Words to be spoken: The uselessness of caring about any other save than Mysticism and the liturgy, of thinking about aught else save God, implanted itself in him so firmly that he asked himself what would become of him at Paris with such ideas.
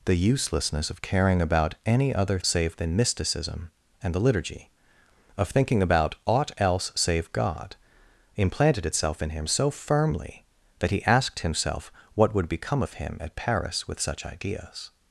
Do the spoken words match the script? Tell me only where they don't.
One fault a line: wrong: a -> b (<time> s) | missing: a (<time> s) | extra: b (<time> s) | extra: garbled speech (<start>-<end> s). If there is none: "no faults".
no faults